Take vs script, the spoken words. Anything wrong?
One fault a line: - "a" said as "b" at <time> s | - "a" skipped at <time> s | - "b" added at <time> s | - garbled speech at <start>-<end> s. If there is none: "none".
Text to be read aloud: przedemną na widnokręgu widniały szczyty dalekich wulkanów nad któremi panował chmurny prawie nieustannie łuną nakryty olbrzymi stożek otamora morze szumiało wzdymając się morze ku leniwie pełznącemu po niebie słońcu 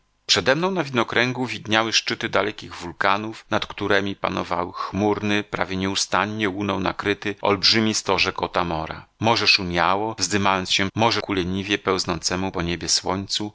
none